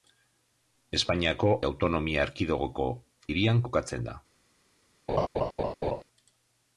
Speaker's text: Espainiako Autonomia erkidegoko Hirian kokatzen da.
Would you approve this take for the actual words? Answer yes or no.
yes